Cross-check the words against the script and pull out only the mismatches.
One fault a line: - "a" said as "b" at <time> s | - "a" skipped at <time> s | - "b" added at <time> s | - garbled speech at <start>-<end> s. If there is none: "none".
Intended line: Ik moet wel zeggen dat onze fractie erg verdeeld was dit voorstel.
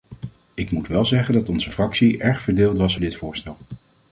none